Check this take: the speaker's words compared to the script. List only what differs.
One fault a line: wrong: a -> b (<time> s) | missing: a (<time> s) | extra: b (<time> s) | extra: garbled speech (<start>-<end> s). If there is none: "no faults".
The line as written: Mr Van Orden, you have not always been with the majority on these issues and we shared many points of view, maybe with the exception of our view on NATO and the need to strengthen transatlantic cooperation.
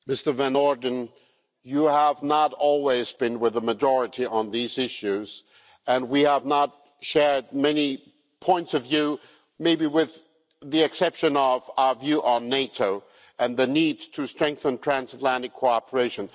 extra: have not (6.2 s)